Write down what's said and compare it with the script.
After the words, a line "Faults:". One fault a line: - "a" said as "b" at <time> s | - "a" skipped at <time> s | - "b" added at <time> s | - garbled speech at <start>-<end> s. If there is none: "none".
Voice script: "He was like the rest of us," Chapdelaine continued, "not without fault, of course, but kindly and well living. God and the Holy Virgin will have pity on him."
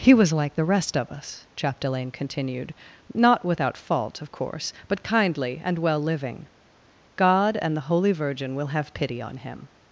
"He was like the rest of us," Chapdelaine continued, "not without fault, of course, but kindly and well living. God and the Holy Virgin will have pity on him."
Faults:
none